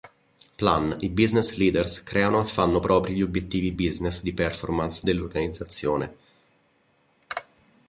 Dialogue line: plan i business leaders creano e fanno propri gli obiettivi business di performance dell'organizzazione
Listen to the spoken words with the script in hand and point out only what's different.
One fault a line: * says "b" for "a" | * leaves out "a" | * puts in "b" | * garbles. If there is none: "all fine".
all fine